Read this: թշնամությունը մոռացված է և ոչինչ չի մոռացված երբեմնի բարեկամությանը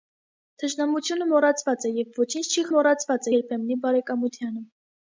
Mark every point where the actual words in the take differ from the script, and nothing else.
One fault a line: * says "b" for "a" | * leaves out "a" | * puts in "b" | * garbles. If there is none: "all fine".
all fine